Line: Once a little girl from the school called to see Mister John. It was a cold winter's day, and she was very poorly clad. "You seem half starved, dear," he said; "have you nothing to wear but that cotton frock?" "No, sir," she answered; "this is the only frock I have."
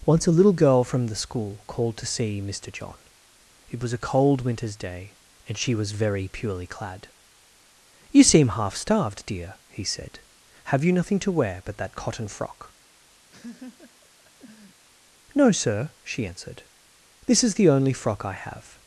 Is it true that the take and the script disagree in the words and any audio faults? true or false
true